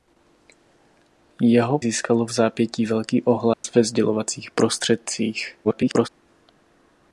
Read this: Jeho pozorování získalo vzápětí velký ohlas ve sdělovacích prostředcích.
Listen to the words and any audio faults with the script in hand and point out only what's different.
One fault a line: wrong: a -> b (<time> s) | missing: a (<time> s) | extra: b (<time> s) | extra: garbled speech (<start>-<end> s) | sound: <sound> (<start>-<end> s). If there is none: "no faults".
missing: pozorování (1.8 s)
sound: dropout (3.5-3.6 s)
extra: garbled speech (5.6-6.1 s)